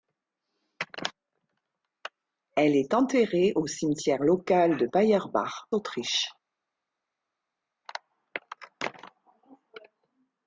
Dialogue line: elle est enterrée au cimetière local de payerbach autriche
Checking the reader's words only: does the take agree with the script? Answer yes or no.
yes